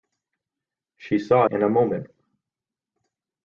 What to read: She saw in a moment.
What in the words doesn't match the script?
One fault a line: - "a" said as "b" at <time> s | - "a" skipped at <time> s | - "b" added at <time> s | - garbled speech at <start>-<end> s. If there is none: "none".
none